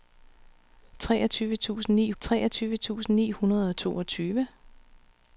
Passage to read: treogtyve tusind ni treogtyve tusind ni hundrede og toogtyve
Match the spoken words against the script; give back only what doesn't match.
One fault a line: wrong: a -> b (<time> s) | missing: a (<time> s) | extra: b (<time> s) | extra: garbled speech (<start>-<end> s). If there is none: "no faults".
no faults